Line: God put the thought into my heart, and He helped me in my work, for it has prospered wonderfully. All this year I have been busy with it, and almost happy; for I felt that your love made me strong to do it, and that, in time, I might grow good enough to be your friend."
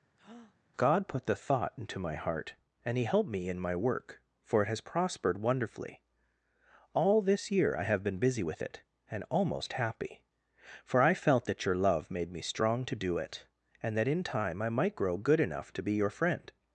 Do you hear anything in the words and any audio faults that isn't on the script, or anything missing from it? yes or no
yes